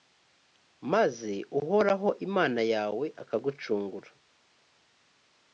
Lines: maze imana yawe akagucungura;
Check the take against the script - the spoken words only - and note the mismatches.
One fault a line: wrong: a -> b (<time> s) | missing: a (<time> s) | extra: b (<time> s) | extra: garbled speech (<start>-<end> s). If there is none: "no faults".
extra: uhoraho (1.6 s)